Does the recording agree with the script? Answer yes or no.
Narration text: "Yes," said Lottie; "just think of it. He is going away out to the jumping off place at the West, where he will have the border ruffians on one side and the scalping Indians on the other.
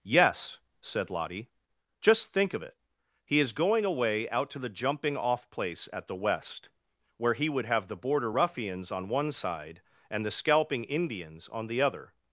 no